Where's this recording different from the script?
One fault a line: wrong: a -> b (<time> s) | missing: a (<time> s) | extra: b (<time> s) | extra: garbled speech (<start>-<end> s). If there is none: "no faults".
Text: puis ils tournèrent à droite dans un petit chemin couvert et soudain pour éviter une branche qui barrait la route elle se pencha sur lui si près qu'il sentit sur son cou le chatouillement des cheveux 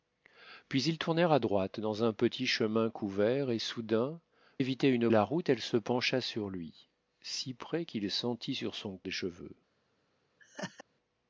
missing: pour (4.2 s)
missing: branche qui barrait (5.1 s)
missing: cou le chatouillement (9.0 s)